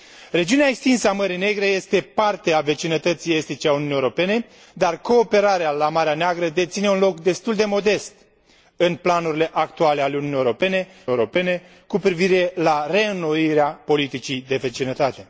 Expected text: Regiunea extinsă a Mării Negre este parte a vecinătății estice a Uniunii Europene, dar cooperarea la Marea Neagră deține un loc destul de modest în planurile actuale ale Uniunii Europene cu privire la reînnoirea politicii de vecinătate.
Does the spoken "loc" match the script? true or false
true